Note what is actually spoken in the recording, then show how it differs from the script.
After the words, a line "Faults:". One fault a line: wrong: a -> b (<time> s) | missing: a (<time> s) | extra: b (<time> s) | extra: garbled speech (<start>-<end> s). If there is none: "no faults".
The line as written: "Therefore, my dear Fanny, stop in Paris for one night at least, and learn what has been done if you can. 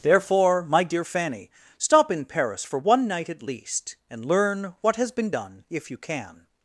"Therefore, my dear Fanny, stop in Paris for one night at least, and learn what has been done if you can.
Faults:
no faults